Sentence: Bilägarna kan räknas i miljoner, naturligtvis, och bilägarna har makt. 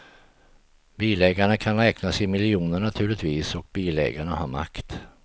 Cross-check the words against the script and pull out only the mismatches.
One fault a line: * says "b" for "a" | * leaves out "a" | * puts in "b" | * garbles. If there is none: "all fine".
all fine